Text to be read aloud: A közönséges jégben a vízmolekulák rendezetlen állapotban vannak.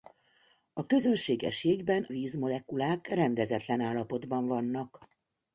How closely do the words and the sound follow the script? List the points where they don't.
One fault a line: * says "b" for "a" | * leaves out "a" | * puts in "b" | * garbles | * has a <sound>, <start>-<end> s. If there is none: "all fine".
* leaves out "a"